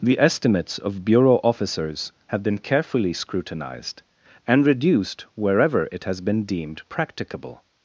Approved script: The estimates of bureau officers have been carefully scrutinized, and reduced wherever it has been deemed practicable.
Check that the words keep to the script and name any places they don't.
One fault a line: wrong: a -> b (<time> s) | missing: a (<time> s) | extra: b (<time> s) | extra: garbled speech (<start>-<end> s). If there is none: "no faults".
no faults